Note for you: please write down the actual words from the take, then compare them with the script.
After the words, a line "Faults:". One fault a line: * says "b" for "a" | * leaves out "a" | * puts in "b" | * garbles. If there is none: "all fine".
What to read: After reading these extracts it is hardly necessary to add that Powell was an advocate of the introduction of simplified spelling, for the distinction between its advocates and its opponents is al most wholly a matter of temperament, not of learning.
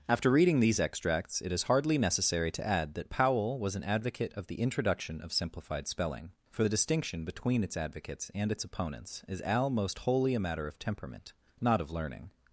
After reading these extracts it is hardly necessary to add that Powell was an advocate of the introduction of simplified spelling, for the distinction between its advocates and its opponents is al most wholly a matter of temperament, not of learning.
Faults:
all fine